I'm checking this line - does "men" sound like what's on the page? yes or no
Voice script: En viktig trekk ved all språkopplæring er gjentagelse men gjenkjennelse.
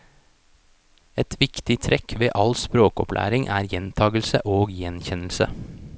no